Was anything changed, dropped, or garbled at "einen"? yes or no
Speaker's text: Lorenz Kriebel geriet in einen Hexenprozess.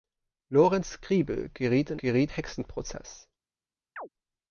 yes